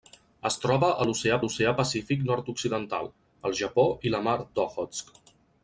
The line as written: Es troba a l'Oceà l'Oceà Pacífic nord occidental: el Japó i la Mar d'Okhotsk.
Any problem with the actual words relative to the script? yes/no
no